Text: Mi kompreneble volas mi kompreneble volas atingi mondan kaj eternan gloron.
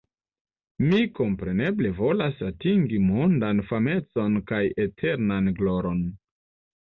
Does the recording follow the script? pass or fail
fail